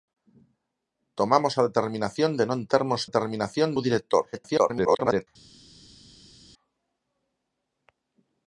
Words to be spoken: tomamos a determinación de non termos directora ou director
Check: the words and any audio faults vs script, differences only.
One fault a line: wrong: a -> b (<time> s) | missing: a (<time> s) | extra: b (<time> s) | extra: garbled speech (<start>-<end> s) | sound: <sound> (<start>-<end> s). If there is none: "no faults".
wrong: directora -> determinación (3.1 s)
extra: garbled speech (4.3-5.3 s)